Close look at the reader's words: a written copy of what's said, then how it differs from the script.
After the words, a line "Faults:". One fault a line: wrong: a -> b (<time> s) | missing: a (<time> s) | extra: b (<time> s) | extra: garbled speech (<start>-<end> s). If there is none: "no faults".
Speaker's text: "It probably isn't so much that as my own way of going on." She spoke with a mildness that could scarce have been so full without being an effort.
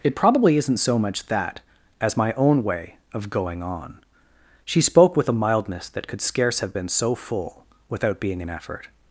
"It probably isn't so much that as my own way of going on." She spoke with a mildness that could scarce have been so full without being an effort.
Faults:
no faults